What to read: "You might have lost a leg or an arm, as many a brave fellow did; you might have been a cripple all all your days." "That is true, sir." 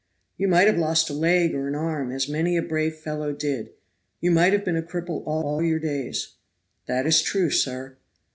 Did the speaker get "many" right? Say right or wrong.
right